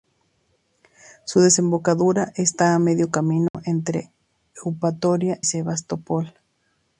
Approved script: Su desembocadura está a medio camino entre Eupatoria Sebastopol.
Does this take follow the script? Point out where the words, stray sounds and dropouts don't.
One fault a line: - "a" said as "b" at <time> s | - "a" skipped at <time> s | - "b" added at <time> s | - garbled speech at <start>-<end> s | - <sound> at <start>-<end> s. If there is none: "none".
- dropout at 3.5-3.5 s